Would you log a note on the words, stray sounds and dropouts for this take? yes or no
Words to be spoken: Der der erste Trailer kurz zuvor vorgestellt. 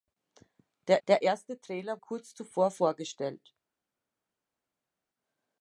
no